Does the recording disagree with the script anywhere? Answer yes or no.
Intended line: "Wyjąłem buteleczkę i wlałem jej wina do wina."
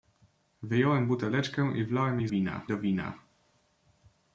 no